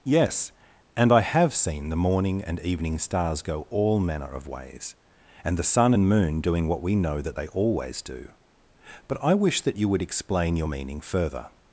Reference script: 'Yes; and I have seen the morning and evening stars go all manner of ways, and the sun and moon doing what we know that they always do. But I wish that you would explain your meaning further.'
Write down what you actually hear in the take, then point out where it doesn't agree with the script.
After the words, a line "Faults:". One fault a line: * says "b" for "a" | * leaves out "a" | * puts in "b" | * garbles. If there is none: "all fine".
'Yes; and I have seen the morning and evening stars go all manner of ways, and the sun and moon doing what we know that they always do. But I wish that you would explain your meaning further.'
Faults:
all fine